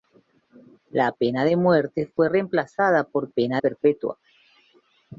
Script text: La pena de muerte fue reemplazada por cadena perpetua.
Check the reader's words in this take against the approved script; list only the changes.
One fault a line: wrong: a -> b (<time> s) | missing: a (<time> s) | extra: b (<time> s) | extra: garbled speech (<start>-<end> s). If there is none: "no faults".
wrong: cadena -> pena (3.3 s)